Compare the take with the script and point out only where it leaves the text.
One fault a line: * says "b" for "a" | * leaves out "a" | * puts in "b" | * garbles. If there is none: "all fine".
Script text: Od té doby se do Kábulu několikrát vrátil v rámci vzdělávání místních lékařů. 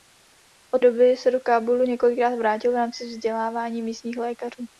* leaves out "té"